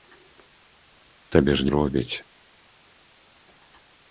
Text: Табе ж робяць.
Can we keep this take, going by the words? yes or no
yes